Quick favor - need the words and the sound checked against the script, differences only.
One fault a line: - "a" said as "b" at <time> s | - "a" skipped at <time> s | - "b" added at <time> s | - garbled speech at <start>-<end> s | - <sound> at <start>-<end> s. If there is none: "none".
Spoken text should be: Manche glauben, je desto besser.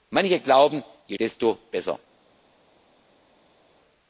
none